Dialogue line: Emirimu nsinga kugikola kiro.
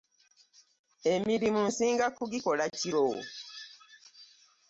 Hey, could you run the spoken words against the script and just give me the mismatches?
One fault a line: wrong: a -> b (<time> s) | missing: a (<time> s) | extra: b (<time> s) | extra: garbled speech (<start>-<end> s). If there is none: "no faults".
no faults